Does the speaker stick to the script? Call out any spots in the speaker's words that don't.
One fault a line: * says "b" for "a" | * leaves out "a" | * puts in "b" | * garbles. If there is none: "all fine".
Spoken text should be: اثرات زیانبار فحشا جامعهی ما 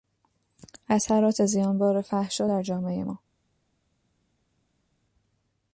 * puts in "در"